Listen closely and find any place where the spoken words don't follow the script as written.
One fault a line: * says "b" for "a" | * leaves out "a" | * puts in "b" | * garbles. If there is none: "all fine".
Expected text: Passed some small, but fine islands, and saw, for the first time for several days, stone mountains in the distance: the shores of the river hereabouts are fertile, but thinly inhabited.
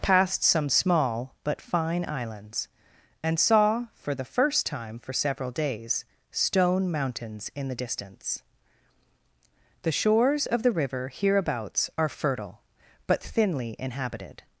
all fine